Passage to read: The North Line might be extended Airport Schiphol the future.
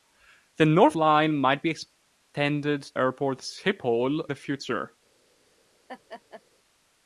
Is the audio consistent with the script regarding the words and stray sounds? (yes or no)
no